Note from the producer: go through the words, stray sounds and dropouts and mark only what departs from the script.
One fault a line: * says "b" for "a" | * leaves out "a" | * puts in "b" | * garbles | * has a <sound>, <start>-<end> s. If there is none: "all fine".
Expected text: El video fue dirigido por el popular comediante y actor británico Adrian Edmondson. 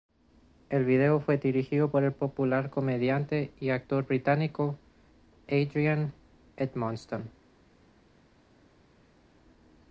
all fine